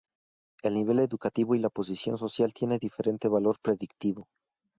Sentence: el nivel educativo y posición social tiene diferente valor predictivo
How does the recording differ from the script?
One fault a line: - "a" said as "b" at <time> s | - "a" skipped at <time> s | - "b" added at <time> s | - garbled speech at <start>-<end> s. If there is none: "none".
- "la" added at 1.6 s